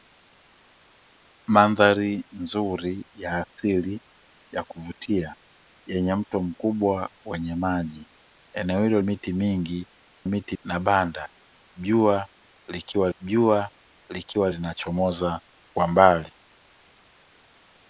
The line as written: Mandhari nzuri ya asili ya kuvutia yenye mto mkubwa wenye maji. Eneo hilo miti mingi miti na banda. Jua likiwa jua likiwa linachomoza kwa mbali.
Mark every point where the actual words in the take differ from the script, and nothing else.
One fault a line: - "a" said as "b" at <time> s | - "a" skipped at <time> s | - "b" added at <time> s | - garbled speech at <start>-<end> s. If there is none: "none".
none